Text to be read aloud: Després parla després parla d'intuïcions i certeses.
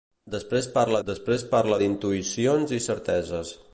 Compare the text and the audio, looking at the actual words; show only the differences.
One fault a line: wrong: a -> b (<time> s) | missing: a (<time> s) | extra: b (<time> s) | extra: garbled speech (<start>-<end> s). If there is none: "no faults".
no faults